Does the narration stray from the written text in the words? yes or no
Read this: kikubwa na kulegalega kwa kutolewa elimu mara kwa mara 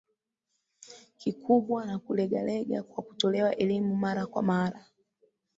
no